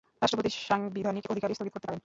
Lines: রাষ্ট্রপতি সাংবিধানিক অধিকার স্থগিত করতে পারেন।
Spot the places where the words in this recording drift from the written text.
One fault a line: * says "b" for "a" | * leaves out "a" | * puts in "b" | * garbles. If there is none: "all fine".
all fine